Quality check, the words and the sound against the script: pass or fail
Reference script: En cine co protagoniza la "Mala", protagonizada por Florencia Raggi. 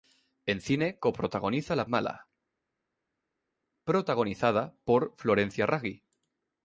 pass